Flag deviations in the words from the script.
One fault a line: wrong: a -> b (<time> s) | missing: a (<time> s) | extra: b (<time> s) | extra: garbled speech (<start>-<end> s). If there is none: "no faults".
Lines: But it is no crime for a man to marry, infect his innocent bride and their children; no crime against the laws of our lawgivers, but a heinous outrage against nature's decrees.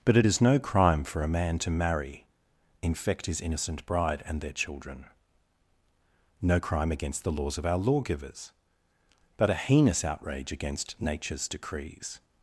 no faults